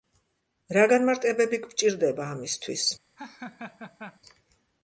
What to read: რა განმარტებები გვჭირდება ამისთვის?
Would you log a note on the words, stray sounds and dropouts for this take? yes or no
yes